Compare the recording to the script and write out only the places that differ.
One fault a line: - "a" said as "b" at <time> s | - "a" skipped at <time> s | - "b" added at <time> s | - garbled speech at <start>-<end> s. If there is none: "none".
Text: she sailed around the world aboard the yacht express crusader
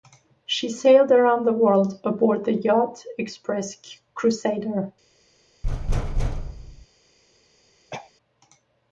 none